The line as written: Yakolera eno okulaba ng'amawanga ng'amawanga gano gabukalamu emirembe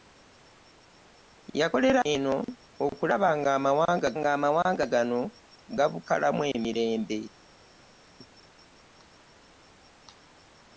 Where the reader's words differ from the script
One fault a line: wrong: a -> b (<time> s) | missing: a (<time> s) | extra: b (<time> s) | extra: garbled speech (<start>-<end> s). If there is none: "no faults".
no faults